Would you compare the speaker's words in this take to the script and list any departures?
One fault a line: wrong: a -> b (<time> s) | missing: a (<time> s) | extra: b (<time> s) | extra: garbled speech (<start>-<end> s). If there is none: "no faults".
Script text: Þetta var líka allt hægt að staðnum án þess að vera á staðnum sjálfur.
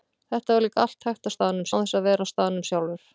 no faults